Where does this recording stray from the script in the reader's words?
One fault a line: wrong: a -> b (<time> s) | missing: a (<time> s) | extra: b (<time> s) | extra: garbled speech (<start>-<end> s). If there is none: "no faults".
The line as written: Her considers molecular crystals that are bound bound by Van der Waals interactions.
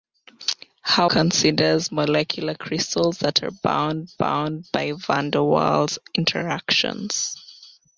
no faults